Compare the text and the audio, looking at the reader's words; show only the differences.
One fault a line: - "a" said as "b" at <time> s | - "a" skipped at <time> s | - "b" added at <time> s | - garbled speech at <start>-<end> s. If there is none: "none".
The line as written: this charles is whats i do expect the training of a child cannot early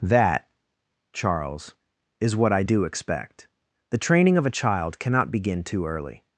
- "this" said as "that" at 0.0 s
- "whats" said as "what" at 2.4 s
- "begin too" added at 5.3 s